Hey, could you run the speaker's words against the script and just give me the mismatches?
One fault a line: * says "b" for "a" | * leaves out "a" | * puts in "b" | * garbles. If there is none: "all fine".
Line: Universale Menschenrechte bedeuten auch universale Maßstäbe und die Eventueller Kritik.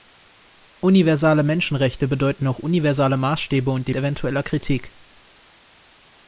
all fine